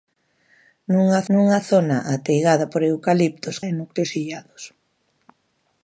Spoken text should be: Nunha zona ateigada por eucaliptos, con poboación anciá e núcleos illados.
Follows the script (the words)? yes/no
no